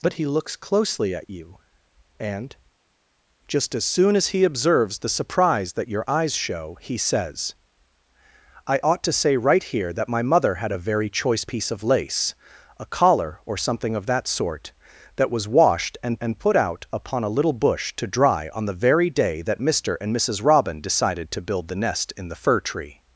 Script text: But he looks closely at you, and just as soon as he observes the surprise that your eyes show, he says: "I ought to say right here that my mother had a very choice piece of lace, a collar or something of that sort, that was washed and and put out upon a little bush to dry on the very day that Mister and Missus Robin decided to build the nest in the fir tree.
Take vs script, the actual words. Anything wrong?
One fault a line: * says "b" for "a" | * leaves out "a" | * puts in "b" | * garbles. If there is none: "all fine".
all fine